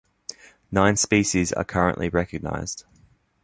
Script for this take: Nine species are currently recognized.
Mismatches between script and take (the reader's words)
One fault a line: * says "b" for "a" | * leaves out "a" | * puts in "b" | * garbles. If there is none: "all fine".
all fine